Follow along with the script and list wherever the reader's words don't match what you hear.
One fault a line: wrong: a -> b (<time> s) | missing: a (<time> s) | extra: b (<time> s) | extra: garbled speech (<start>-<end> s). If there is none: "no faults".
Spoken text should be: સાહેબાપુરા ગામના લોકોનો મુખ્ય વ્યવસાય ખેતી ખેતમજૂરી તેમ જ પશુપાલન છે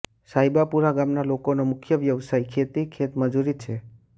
missing: તેમ જ પશુપાલન (3.6 s)